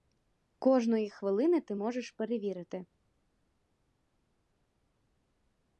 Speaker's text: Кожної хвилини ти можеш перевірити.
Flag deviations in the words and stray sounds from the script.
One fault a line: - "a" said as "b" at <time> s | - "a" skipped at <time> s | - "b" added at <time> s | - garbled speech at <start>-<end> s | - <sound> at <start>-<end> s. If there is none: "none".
none